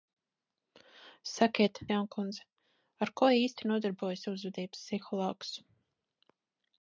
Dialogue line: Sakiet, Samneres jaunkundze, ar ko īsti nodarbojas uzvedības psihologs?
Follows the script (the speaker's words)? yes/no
no